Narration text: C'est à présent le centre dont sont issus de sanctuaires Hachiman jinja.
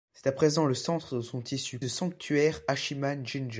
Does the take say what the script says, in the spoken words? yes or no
yes